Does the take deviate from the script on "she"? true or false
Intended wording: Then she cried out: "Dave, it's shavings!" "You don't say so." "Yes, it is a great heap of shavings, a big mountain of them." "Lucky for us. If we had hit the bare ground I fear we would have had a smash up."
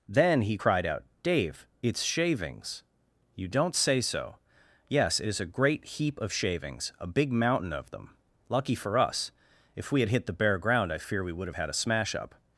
true